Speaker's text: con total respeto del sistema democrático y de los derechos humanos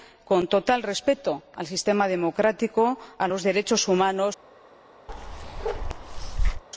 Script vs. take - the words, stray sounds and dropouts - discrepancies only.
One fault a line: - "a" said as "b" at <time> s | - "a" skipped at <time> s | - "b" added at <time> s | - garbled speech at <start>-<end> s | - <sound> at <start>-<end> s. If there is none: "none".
- bark at 5.1-6.6 s